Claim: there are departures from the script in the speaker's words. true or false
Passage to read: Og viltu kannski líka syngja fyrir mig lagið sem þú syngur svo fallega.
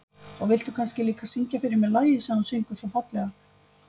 false